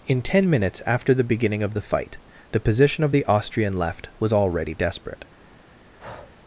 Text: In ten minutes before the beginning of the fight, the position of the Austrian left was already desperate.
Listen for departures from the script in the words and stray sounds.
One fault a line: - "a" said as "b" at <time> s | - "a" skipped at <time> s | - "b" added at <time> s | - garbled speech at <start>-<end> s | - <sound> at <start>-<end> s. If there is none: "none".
- "before" said as "after" at 0.9 s
- breath at 6.0-6.3 s